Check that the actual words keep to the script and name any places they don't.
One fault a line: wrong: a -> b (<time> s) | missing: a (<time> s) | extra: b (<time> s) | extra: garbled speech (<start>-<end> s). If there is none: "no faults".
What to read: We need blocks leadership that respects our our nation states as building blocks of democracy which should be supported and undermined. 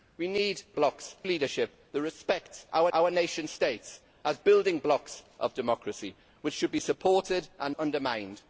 no faults